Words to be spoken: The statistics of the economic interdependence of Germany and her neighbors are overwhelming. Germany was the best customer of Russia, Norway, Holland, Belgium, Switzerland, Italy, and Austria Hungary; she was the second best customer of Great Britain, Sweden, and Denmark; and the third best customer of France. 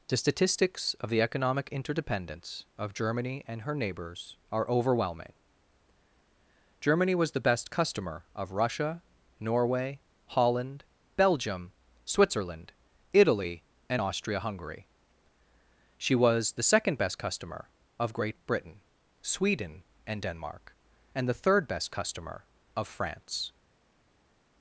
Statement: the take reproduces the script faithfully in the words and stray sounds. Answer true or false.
true